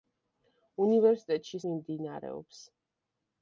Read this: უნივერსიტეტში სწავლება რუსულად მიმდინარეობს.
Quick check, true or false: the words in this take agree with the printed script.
false